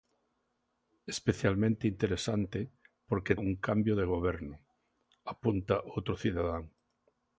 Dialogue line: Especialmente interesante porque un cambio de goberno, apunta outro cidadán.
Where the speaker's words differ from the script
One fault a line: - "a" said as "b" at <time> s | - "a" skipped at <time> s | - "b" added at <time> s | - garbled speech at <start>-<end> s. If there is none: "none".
none